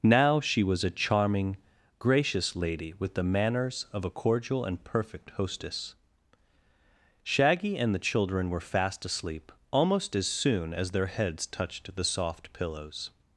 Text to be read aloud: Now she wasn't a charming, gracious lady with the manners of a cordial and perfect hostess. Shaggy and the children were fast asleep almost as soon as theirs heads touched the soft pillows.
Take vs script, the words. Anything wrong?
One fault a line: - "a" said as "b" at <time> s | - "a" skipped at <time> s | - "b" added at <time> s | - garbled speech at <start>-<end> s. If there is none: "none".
- "wasn't" said as "was" at 0.6 s
- "theirs" said as "their" at 10.9 s